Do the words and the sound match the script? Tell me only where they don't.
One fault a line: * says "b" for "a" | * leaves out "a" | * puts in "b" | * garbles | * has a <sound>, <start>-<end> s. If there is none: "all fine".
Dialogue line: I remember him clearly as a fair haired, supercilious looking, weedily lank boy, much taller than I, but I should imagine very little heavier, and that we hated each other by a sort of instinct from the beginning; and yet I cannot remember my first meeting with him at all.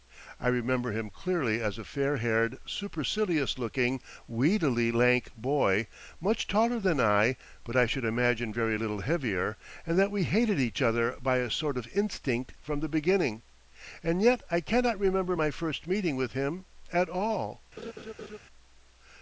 * has a laugh, 17.8-18.4 s